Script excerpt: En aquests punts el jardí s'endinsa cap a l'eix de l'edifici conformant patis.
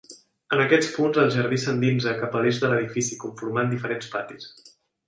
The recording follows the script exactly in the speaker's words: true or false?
false